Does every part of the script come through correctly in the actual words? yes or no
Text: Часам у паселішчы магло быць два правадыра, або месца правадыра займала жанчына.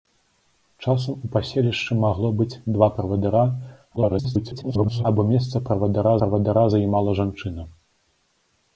no